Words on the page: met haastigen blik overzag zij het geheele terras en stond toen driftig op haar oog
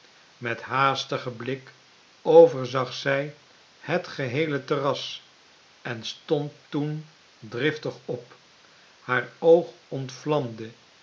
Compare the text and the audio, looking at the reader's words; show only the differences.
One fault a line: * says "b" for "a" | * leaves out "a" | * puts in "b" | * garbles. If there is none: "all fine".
all fine